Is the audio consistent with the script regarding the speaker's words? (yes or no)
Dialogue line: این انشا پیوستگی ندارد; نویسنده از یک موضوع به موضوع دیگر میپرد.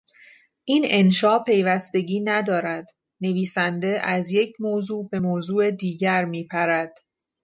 yes